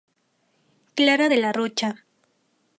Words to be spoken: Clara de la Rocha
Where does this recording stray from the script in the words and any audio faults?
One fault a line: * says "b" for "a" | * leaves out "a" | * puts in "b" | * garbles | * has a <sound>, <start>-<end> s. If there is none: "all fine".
all fine